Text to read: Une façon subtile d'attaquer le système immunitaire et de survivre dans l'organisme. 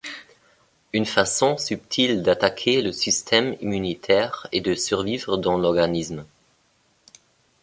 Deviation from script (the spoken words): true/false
false